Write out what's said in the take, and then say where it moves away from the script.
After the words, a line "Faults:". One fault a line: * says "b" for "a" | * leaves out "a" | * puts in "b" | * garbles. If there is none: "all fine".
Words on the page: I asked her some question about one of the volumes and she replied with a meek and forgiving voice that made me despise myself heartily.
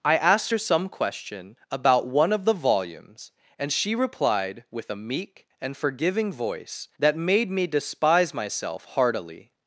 I asked her some question about one of the volumes and she replied with a meek and forgiving voice that made me despise myself heartily.
Faults:
all fine